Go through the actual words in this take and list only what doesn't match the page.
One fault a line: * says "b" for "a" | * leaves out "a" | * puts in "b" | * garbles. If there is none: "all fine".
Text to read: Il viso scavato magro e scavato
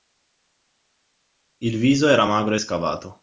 * says "era" for "scavato"